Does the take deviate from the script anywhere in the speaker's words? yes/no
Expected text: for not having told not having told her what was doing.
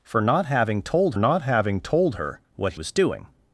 no